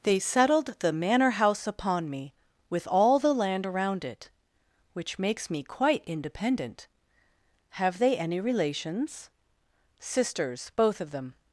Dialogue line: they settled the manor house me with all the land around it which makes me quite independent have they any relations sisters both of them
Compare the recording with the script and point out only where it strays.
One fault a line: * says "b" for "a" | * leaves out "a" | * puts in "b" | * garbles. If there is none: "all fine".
* puts in "upon"